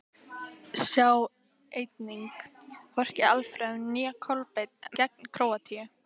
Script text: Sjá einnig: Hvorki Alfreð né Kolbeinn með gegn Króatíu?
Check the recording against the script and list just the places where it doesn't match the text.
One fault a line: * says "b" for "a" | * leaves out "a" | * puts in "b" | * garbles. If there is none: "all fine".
* leaves out "með"